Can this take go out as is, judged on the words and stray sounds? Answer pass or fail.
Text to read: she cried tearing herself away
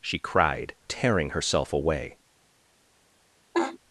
fail